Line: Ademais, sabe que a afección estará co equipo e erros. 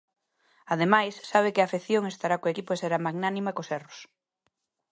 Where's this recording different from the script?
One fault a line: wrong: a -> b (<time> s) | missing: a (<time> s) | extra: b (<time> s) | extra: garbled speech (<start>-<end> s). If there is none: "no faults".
extra: será magnánima cos (2.8 s)